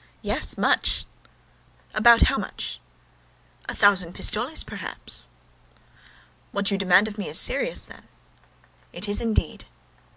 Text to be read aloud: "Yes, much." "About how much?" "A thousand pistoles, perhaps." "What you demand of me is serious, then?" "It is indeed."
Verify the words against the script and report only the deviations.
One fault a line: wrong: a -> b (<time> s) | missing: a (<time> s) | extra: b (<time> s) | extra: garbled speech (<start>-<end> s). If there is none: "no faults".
no faults